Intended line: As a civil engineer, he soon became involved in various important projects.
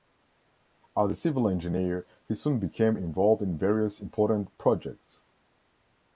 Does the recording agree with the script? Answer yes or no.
yes